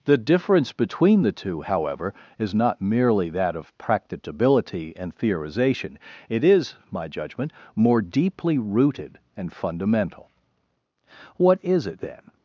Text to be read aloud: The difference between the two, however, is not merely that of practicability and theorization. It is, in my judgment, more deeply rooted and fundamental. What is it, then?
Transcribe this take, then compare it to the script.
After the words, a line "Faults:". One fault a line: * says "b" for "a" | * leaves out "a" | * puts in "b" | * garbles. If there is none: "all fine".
The difference between the two, however, is not merely that of practicability and theorization. It is, my judgment, more deeply rooted and fundamental. What is it, then?
Faults:
* leaves out "in"